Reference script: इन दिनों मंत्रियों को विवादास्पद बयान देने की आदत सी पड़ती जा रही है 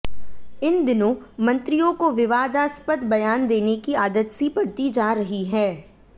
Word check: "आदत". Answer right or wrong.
right